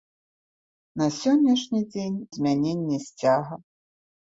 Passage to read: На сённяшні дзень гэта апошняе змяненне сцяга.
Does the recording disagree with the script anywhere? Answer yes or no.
yes